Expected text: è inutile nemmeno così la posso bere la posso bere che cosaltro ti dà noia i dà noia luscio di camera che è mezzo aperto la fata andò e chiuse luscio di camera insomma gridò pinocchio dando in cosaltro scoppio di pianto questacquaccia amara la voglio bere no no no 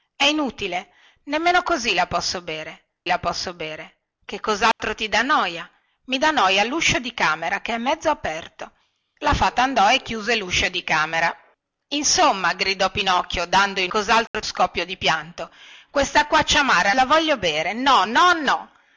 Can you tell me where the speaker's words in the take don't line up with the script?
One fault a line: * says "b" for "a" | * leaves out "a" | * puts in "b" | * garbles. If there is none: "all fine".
all fine